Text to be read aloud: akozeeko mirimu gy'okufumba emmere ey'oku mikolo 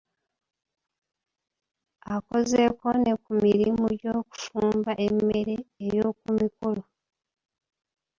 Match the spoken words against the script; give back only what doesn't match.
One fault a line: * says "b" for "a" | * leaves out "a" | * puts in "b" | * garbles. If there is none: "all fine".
* puts in "ne ku"